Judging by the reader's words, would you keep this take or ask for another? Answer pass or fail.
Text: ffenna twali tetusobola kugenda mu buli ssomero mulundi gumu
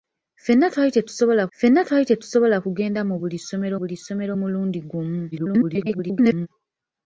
fail